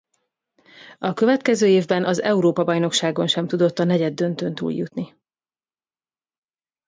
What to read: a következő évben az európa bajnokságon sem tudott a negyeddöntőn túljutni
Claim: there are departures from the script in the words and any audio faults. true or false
false